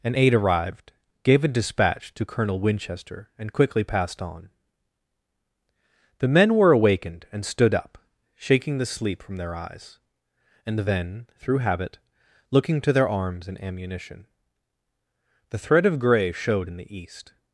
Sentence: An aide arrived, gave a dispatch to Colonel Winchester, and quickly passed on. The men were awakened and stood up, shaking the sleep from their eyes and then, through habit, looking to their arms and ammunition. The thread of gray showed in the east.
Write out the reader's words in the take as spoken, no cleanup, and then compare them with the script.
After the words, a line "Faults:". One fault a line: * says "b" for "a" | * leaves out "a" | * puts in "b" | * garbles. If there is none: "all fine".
An aide arrived, gave a dispatch to Colonel Winchester, and quickly passed on. The men were awakened and stood up, shaking the sleep from their eyes and then, through habit, looking to their arms and ammunition. The thread of gray showed in the east.
Faults:
all fine